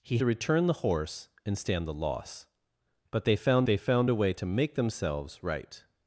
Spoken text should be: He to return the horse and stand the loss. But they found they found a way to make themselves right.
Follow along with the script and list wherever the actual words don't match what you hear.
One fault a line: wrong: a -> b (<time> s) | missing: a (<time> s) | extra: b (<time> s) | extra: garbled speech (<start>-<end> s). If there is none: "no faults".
no faults